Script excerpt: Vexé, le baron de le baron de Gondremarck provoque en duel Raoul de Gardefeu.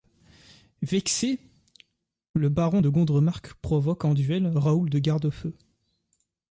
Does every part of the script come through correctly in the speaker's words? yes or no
no